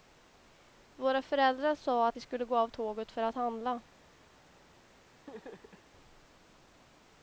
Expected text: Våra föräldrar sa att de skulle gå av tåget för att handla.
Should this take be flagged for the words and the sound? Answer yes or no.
yes